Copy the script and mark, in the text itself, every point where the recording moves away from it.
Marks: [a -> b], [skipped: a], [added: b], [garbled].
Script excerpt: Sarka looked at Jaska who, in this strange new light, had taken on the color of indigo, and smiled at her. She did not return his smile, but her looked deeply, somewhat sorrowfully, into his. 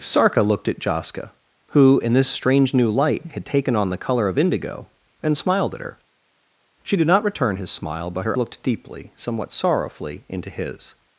Sarka looked at Jaska who, in this strange new light, had taken on the color of indigo, and smiled at her. She did not return his smile, but her looked deeply, somewhat sorrowfully, into his.